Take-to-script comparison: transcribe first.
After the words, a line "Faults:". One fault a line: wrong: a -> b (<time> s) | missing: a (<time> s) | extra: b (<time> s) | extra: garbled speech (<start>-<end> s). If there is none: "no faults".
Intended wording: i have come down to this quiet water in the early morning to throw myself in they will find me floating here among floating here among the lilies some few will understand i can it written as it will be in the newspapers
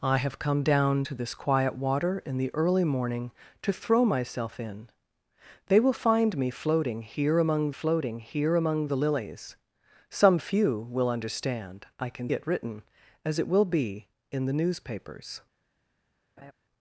i have come down to this quiet water in the early morning to throw myself in they will find me floating here among floating here among the lilies some few will understand i can it written as it will be in the newspapers
Faults:
no faults